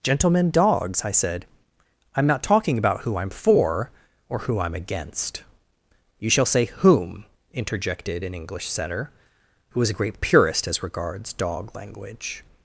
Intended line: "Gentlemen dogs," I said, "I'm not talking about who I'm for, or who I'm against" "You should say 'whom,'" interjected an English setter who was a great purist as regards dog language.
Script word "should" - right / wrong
wrong